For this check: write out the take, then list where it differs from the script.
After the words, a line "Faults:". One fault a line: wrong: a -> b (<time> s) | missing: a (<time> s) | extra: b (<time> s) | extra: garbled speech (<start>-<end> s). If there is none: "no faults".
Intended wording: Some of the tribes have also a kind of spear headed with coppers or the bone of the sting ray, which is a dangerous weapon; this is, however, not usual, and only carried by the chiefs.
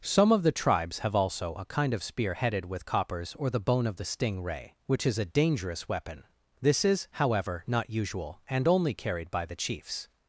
Some of the tribes have also a kind of spear headed with coppers or the bone of the sting ray, which is a dangerous weapon; this is, however, not usual, and only carried by the chiefs.
Faults:
no faults